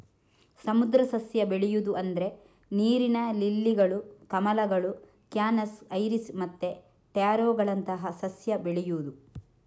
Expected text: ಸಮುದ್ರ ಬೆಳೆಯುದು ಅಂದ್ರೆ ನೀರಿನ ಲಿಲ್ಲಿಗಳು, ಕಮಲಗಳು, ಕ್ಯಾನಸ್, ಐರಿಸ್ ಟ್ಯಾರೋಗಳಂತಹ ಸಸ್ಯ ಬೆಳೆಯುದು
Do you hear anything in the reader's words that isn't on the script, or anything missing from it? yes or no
yes